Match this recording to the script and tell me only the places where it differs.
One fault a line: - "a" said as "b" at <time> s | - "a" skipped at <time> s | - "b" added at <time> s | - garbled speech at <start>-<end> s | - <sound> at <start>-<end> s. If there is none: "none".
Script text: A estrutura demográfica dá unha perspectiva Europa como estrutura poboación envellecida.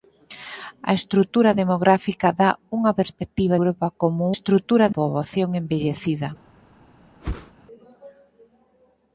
- whoosh at 7.2-7.5 s